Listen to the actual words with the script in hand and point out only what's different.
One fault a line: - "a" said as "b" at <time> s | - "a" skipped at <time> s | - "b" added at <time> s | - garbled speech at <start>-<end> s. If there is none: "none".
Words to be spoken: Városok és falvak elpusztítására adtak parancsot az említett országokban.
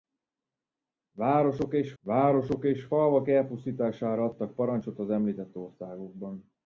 - "városok és" added at 2.0 s